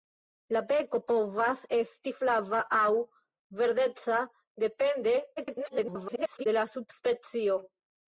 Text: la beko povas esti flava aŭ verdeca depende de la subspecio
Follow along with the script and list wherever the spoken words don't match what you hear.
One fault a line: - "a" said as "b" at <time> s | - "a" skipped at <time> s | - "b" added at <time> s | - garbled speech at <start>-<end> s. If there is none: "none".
- garbled speech at 5.4-6.5 s